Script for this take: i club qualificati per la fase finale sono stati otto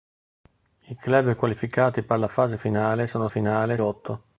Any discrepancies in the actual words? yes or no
yes